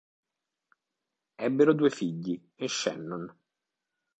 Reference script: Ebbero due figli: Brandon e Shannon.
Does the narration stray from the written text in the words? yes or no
yes